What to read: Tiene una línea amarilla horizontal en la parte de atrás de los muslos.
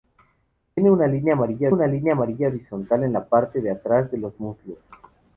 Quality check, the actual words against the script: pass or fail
fail